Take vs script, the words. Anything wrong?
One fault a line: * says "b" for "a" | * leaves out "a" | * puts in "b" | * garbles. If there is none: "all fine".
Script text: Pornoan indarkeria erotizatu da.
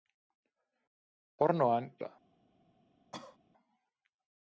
* leaves out "indarkeria erotizatu"